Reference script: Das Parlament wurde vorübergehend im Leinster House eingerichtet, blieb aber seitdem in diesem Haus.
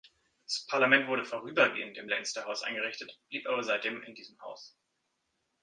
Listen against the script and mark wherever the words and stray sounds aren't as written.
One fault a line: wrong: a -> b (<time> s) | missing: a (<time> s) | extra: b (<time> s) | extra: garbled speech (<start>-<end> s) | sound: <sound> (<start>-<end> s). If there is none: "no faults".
no faults